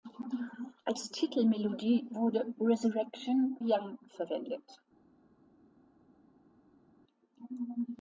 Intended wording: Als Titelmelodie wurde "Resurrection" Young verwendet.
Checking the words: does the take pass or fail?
pass